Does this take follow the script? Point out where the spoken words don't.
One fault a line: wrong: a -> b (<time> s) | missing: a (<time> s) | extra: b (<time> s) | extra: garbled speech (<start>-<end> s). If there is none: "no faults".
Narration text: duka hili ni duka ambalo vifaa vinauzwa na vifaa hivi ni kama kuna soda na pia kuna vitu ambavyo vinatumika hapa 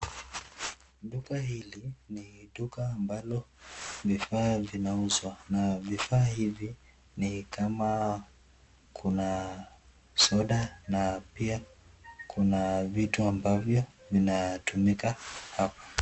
no faults